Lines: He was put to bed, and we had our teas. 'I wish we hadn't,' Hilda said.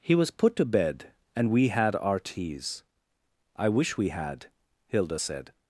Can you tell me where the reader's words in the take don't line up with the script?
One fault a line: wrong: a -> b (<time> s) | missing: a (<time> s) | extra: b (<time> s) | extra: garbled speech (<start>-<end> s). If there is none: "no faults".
wrong: hadn't -> had (4.1 s)